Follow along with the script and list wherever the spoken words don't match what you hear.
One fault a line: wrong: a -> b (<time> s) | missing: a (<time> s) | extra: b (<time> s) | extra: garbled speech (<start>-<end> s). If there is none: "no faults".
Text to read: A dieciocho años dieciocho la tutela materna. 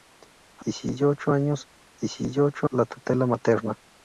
no faults